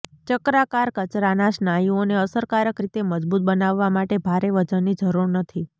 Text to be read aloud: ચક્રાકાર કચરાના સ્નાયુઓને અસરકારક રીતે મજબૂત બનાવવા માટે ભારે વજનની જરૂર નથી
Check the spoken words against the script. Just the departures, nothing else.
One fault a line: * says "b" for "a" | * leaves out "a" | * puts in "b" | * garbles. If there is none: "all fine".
all fine